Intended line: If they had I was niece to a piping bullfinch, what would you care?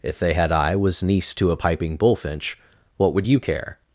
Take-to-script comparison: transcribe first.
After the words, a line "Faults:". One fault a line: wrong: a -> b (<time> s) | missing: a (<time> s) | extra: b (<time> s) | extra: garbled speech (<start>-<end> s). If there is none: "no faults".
If they had I was niece to a piping bullfinch, what would you care?
Faults:
no faults